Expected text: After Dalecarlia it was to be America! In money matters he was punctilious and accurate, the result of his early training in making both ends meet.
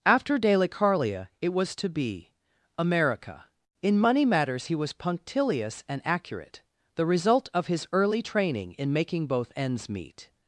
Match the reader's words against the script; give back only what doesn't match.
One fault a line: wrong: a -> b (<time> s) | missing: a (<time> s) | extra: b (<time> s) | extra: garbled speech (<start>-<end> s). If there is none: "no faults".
no faults